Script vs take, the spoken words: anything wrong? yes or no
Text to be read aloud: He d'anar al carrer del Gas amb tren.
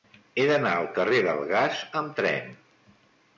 no